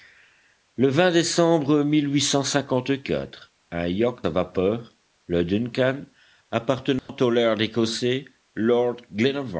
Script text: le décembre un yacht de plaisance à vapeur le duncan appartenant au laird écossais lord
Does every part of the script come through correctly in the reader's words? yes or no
no